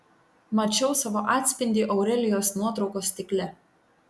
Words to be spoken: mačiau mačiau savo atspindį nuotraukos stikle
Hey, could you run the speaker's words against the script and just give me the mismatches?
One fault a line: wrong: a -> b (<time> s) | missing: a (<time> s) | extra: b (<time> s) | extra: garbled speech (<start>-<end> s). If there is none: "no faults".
missing: mačiau (0.9 s)
extra: aurelijos (2.0 s)